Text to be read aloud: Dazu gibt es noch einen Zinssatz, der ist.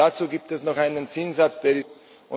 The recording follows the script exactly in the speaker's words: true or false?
true